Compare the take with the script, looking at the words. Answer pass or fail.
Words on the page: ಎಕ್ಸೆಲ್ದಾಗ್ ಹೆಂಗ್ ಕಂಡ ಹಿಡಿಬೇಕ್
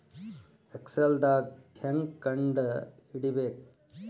pass